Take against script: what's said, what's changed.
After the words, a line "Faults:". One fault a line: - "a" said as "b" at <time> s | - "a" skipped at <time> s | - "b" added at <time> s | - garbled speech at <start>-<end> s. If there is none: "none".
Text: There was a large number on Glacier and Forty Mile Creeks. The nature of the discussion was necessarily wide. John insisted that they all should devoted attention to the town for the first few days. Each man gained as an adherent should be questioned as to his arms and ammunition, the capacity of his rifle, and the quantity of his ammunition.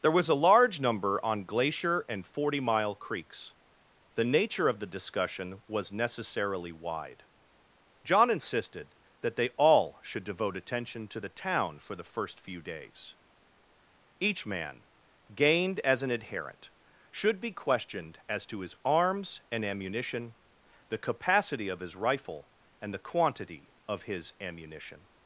There was a large number on Glacier and Forty Mile Creeks. The nature of the discussion was necessarily wide. John insisted that they all should devote attention to the town for the first few days. Each man gained as an adherent should be questioned as to his arms and ammunition, the capacity of his rifle, and the quantity of his ammunition.
Faults:
- "devoted" said as "devote" at 10.2 s